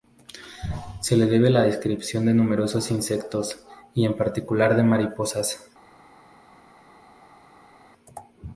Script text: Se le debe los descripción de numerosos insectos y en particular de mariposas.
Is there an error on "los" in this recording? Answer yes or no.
yes